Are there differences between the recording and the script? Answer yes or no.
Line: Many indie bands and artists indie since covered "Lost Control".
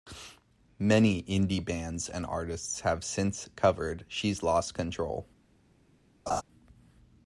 yes